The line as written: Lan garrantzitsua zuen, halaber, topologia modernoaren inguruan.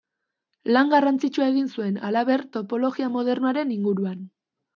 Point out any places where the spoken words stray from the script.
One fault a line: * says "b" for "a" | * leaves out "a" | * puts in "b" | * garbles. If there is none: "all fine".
* puts in "egin"